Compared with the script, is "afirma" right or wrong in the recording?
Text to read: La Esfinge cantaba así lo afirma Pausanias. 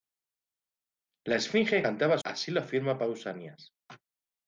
right